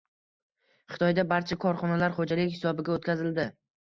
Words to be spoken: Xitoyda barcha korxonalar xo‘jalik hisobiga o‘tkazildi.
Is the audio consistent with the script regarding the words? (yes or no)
yes